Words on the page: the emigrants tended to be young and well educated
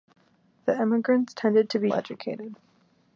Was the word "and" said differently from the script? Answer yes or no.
yes